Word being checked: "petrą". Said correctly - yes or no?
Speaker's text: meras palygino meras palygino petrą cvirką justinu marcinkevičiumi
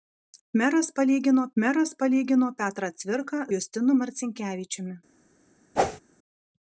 yes